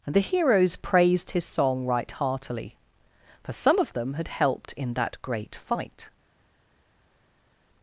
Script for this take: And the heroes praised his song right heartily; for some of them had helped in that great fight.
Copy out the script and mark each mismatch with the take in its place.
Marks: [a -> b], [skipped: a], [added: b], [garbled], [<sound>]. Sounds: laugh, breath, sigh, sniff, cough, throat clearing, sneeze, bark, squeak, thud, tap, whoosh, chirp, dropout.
And the heroes praised his song right heartily; for some of them had helped in that great fight.